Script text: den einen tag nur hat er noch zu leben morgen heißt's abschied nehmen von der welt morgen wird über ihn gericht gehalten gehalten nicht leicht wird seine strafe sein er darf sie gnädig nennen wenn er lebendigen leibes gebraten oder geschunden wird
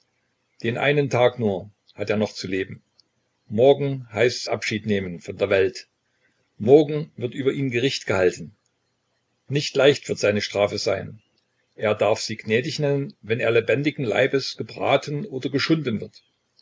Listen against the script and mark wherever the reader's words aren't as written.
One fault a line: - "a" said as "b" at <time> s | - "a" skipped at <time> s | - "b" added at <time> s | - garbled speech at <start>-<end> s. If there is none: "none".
- "gehalten" skipped at 8.5 s